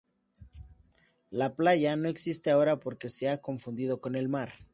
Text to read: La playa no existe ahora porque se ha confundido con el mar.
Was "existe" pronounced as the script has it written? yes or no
yes